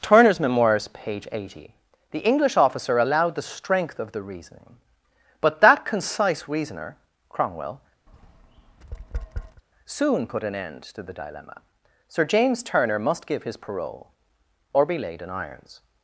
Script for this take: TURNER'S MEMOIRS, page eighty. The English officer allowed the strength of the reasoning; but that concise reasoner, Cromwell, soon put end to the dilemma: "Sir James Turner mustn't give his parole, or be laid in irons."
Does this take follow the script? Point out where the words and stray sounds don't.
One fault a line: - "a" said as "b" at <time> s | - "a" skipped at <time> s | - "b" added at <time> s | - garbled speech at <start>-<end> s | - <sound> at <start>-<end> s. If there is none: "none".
- tap at 8.1-9.6 s
- "an" added at 10.4 s
- "mustn't" said as "must" at 13.0 s